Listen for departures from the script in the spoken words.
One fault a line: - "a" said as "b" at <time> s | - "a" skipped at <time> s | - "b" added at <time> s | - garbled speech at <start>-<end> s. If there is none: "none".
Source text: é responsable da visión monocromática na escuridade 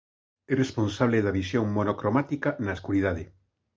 none